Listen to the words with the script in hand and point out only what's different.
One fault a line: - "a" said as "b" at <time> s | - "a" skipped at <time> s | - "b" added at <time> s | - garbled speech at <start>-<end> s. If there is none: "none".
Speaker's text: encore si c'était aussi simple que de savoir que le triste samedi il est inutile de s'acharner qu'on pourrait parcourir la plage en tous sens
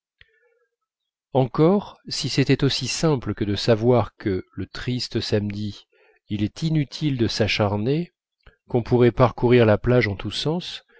none